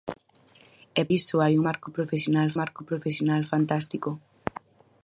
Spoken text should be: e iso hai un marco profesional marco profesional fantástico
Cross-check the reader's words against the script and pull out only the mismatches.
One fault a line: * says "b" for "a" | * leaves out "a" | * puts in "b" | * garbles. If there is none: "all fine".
all fine